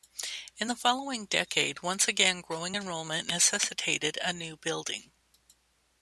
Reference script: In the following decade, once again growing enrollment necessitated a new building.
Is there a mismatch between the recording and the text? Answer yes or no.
no